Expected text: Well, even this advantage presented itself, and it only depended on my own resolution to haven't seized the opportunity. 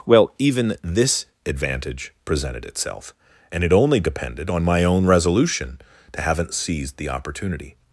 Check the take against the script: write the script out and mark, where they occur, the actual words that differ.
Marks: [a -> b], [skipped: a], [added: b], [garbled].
Well, even this advantage presented itself, and it only depended on my own resolution to haven't seized the opportunity.